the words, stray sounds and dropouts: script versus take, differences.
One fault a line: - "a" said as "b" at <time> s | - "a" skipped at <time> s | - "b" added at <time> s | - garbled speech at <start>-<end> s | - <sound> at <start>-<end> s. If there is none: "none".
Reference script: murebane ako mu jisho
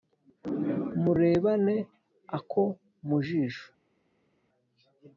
none